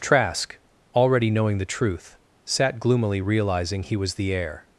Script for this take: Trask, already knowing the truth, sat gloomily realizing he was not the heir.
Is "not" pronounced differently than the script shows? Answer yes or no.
yes